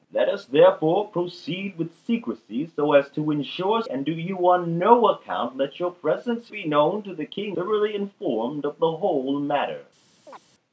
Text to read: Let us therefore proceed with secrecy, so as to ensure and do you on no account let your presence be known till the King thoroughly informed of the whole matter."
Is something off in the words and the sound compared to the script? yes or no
yes